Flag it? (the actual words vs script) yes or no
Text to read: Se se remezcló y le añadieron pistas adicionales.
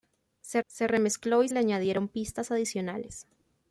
no